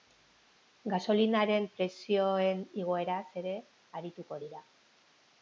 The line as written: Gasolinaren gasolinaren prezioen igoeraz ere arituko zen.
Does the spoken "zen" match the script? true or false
false